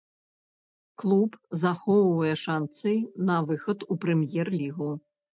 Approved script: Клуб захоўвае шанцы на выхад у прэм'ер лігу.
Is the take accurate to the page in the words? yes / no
yes